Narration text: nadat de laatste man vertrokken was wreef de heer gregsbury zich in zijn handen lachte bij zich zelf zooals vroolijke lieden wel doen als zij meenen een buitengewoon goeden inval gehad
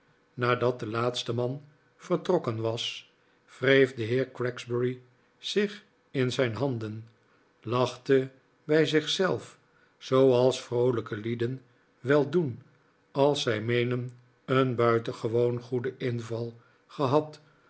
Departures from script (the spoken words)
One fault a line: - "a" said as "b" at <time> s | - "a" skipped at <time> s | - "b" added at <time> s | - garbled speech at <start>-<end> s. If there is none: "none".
none